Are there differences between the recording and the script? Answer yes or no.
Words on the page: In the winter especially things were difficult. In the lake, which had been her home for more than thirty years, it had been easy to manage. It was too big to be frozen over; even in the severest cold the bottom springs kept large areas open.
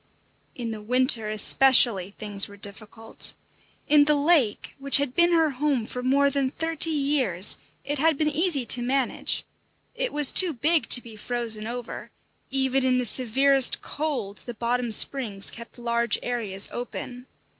no